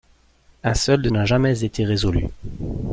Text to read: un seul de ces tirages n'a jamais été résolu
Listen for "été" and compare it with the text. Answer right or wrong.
right